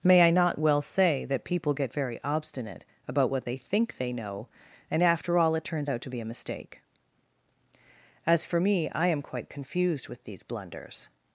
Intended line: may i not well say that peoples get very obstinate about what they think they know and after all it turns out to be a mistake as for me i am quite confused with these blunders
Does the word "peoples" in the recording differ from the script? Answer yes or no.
yes